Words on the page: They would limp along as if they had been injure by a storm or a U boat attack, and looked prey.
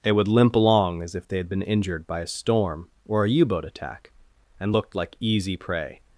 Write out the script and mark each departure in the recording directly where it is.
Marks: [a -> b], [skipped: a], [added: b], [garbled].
They would limp along as if they had been [injure -> injured] by a storm or a U boat attack, and looked [added: like easy] prey.